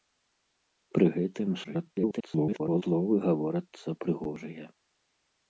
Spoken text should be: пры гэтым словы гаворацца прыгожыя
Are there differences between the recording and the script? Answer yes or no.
yes